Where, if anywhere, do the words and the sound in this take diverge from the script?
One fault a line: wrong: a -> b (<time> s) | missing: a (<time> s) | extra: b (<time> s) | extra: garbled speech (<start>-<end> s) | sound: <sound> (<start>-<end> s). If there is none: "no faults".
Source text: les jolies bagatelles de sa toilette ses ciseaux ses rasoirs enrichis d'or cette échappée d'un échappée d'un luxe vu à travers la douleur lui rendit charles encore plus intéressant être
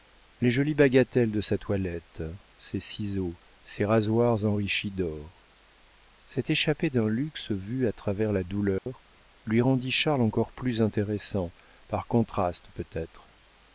missing: échappée d'un (7.1 s)
sound: dropout (8.8-8.9 s)
extra: par contraste peut (11.9 s)